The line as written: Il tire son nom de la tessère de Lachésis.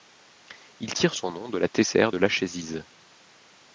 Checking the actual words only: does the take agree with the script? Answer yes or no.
yes